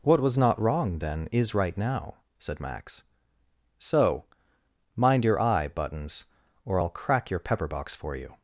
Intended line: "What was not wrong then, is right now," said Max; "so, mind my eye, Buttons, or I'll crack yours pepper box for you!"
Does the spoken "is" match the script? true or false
true